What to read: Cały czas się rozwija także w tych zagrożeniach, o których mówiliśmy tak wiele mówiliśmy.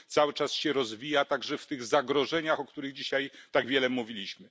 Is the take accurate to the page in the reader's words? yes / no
no